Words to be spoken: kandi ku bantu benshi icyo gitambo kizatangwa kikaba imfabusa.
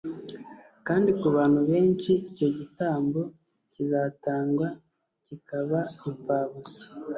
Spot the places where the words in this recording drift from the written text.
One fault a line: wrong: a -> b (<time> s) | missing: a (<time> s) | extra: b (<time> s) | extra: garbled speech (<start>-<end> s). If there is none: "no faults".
no faults